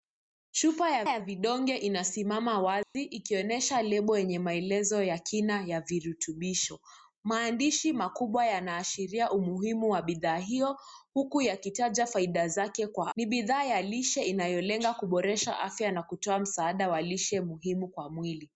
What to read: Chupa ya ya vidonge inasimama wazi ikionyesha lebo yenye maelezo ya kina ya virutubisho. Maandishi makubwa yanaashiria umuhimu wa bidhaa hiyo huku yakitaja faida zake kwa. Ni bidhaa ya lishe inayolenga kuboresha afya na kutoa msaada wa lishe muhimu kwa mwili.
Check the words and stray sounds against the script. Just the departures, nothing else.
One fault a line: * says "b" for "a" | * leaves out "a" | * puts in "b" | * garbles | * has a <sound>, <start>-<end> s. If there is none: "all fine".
* has a dropout, 2.8-2.9 s